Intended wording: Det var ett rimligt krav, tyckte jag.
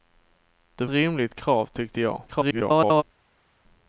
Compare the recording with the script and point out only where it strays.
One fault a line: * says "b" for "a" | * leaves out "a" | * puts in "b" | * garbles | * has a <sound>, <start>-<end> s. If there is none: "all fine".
* leaves out "var ett"
* garbles